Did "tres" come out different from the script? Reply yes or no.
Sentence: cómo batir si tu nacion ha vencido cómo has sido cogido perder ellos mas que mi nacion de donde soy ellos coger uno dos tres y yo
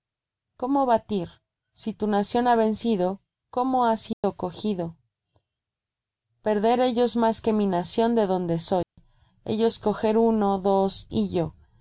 yes